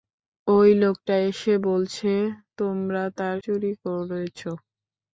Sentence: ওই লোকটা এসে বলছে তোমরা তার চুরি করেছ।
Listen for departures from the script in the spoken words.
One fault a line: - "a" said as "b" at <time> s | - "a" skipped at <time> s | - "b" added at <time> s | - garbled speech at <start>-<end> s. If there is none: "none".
none